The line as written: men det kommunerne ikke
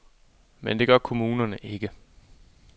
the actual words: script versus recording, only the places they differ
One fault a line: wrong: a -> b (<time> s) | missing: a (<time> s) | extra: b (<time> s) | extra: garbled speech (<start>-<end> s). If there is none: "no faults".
extra: gør (0.9 s)